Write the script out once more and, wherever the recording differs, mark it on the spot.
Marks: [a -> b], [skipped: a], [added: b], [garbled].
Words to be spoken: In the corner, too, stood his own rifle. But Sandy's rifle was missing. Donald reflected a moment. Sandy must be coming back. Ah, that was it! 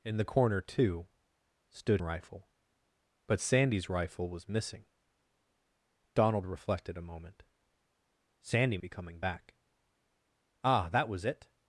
In the corner, too, stood [skipped: his own] rifle. But Sandy's rifle was missing. Donald reflected a moment. Sandy [skipped: must] be coming back. Ah, that was it!